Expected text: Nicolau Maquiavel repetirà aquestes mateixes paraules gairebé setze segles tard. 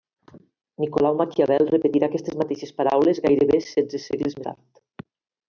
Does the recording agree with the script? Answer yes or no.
yes